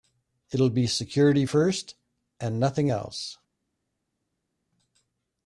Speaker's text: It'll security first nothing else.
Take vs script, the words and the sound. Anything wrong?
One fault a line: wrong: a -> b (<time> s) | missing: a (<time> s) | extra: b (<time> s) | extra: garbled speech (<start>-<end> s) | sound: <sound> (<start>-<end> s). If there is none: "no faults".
extra: be (0.7 s)
extra: and (2.4 s)